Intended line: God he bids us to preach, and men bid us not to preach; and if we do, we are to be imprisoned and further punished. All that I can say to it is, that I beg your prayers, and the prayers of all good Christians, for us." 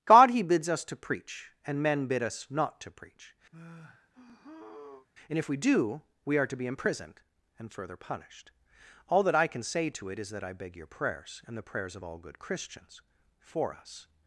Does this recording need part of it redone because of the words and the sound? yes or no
yes